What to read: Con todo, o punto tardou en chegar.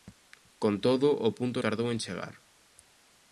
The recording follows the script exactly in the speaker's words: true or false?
true